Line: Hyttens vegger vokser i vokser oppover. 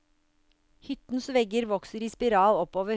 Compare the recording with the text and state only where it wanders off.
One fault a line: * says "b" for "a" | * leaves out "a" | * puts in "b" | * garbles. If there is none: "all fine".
* says "spiral" for "vokser"